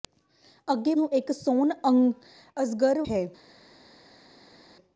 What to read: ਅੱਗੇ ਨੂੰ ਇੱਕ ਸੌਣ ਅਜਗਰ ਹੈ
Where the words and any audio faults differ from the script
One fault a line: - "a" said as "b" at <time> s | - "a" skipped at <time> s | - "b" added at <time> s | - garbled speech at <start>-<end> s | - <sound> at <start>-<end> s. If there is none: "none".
none